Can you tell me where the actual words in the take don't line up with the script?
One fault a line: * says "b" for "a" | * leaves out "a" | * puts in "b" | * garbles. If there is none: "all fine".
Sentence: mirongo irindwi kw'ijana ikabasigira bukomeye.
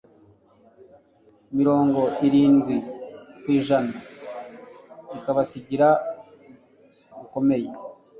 all fine